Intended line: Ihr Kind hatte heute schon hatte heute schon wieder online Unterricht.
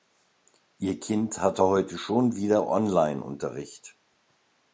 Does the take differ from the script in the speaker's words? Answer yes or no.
yes